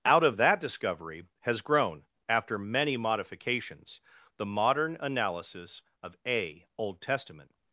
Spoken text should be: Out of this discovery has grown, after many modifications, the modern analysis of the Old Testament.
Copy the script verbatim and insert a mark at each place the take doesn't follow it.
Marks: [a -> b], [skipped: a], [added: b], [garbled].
Out of [this -> that] discovery has grown, after many modifications, the modern analysis of [the -> a] Old Testament.